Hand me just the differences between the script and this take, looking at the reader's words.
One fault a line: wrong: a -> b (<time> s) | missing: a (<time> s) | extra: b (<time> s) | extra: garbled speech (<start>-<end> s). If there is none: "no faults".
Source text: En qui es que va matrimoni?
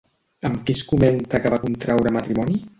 wrong: En -> Amb (0.5 s)
extra: comenta (0.9 s)
extra: contraure (1.7 s)